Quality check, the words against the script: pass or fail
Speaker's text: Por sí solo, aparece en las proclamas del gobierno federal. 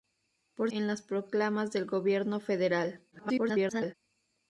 fail